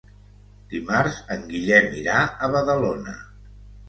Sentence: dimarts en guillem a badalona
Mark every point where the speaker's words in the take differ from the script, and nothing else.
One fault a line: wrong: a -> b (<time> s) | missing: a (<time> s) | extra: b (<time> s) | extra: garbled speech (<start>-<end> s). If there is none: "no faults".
extra: irà (2.0 s)